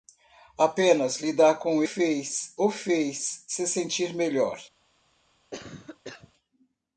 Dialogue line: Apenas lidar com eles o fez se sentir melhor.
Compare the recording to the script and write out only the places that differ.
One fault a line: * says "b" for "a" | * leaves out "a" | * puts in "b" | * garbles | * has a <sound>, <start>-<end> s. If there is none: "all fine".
* says "fez" for "eles"
* has a cough, 5.5-6.3 s